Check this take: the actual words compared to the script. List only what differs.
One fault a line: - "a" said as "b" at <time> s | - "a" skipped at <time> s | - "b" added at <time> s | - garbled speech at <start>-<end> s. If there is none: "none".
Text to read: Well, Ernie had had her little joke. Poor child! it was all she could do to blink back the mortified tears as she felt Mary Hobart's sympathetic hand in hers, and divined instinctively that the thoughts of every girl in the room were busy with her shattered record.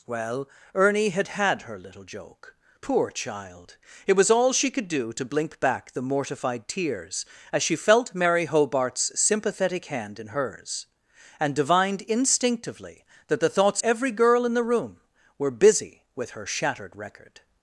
- "of" skipped at 13.8 s